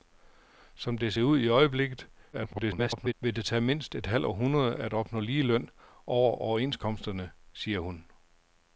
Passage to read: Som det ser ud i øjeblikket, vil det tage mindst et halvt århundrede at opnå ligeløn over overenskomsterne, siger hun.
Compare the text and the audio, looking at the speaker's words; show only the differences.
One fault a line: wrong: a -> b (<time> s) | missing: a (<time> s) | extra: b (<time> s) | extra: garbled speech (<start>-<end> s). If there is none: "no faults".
extra: garbled speech (2.3-3.1 s)